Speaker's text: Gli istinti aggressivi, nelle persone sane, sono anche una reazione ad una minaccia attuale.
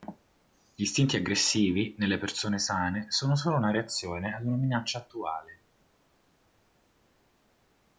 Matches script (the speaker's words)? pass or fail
fail